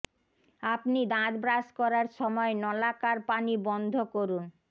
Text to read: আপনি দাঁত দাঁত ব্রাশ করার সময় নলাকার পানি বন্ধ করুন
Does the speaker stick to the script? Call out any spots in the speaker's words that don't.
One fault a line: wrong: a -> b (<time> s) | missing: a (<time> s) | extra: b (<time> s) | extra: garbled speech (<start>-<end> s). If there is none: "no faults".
missing: দাঁত (1.3 s)